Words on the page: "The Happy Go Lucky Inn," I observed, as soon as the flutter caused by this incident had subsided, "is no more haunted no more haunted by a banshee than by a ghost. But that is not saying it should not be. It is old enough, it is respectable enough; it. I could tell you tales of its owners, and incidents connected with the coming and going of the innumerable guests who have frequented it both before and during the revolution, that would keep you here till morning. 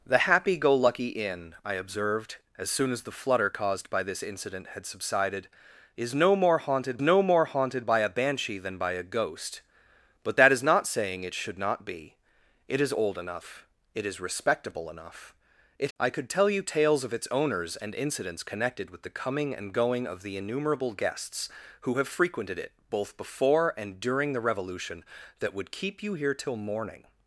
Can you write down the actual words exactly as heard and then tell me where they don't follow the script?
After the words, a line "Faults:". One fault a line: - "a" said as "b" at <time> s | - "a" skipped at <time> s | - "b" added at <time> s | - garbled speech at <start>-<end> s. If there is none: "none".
"The Happy Go Lucky Inn," I observed, as soon as the flutter caused by this incident had subsided, "is no more haunted no more haunted by a banshee than by a ghost. But that is not saying it should not be. It is old enough, it is respectable enough; it. I could tell you tales of its owners, and incidents connected with the coming and going of the innumerable guests who have frequented it both before and during the revolution, that would keep you here till morning.
Faults:
none